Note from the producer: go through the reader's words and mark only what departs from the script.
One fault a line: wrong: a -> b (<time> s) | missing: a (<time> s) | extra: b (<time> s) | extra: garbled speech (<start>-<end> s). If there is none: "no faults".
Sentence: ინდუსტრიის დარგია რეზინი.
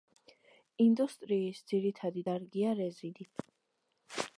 extra: ძირითადი (1.7 s)